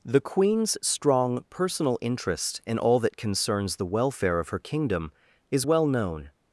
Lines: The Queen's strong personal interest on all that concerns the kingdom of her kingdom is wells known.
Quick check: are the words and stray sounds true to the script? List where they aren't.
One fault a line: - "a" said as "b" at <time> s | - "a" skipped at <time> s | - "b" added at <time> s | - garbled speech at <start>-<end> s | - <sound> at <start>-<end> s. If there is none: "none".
- "on" said as "in" at 2.6 s
- "kingdom" said as "welfare" at 3.9 s
- "wells" said as "well" at 5.6 s